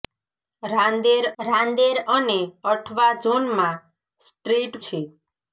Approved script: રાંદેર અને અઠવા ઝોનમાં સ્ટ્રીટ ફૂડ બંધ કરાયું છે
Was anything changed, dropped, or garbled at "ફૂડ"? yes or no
yes